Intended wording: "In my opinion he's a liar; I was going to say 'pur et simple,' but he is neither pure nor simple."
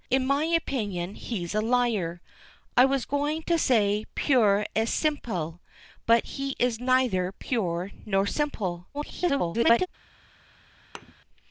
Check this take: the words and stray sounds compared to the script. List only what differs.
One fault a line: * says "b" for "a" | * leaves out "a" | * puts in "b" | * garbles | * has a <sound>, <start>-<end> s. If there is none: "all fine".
* garbles
* has a thud, 10.9-11.1 s